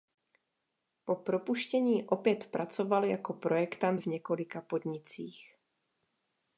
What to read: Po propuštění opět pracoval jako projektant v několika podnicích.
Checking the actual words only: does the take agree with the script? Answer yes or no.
yes